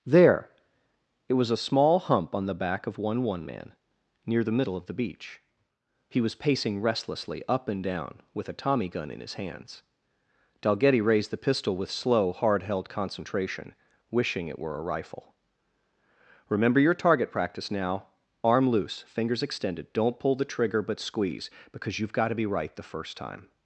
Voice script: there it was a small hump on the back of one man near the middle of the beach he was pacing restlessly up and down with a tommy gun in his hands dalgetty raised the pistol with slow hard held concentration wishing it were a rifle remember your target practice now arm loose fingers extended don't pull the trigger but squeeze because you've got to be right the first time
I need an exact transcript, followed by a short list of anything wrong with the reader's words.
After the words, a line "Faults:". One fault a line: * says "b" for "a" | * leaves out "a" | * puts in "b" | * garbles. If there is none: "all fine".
there it was a small hump on the back of one one man near the middle of the beach he was pacing restlessly up and down with a tommy gun in his hands dalgetty raised the pistol with slow hard held concentration wishing it were a rifle remember your target practice now arm loose fingers extended don't pull the trigger but squeeze because you've got to be right the first time
Faults:
* puts in "one"